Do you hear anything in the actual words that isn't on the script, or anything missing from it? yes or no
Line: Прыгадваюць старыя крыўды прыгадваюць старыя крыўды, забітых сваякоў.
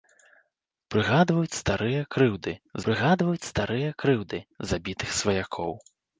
no